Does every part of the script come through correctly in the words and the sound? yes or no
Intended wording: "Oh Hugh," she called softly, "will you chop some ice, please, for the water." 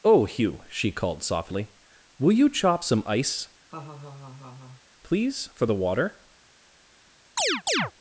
no